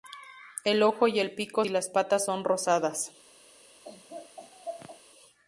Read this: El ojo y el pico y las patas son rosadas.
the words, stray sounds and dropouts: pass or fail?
fail